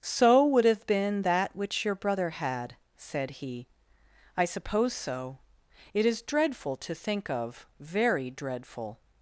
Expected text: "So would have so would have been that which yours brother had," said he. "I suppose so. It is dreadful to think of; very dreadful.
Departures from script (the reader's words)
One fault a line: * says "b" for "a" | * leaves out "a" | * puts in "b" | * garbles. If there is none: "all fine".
* leaves out "so would have"
* says "your" for "yours"